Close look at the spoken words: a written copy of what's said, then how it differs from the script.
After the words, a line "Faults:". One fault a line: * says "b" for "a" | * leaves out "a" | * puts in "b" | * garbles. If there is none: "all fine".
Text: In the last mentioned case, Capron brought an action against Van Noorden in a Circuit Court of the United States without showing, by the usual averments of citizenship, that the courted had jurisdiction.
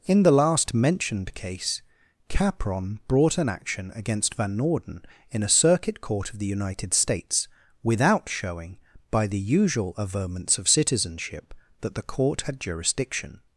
In the last mentioned case, Capron brought an action against Van Noorden in a Circuit Court of the United States without showing, by the usual averments of citizenship, that the court had jurisdiction.
Faults:
* says "court" for "courted"